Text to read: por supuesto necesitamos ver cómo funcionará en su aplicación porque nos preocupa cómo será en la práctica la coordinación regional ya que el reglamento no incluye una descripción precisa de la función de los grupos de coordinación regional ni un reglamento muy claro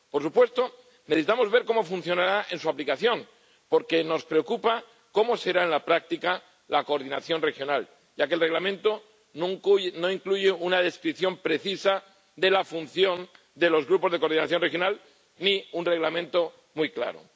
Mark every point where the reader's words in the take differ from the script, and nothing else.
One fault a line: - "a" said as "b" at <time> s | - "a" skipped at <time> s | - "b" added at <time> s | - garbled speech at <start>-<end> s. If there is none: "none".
none